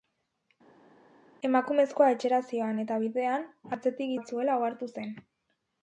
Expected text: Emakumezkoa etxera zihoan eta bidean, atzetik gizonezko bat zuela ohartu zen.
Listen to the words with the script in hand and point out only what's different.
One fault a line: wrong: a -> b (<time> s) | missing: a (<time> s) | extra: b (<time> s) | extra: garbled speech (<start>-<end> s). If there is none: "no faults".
missing: gizonezko (4.1 s)